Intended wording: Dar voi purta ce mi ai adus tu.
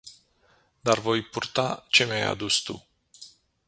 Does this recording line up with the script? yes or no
yes